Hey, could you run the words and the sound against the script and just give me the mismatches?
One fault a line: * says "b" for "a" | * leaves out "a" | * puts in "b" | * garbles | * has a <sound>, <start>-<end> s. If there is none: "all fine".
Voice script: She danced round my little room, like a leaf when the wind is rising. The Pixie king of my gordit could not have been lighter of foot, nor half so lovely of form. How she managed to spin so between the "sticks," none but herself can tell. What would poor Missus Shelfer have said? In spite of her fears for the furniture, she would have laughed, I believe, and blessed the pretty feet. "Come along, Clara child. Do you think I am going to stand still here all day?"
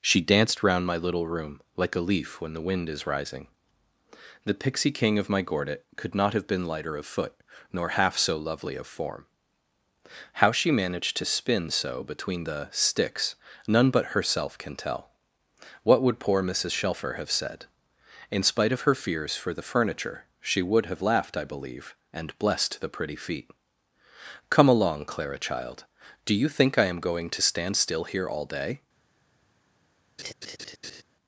* has a laugh, 30.2-31.0 s